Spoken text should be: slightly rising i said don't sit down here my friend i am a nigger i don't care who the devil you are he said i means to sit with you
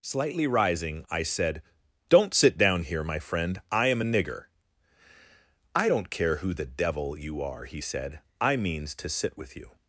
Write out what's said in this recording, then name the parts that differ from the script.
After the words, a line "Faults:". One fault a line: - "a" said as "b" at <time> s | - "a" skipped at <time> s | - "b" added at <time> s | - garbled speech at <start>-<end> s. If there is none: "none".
slightly rising i said don't sit down here my friend i am a nigger i don't care who the devil you are he said i means to sit with you
Faults:
none